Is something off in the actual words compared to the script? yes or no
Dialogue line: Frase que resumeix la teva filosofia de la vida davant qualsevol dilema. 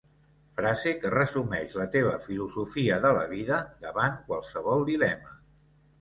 no